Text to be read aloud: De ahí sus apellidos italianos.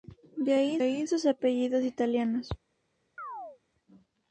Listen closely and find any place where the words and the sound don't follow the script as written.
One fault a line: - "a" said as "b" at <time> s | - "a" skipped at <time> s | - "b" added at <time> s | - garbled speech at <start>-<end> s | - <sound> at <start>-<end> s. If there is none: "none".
- "ahí" added at 0.8 s
- chirp at 3.2-3.6 s